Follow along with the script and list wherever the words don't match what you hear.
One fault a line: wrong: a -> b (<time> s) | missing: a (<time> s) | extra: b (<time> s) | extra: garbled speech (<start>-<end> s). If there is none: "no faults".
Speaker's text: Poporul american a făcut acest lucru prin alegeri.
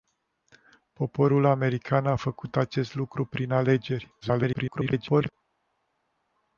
extra: garbled speech (4.2-5.3 s)